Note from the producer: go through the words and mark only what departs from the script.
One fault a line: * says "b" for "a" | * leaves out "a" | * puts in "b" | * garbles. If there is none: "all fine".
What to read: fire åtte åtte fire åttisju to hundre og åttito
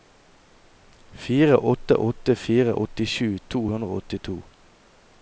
all fine